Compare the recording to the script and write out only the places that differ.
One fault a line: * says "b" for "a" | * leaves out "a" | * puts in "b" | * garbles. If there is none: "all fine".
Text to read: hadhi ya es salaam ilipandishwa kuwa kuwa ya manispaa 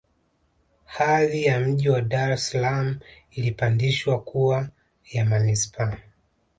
* puts in "mji wa dar"
* leaves out "kuwa"